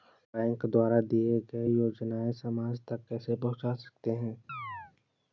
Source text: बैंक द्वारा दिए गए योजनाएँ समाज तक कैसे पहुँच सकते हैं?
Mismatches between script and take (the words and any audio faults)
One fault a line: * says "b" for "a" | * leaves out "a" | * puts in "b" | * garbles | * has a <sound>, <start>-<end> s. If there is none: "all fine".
* has a chirp, 4.5-4.9 s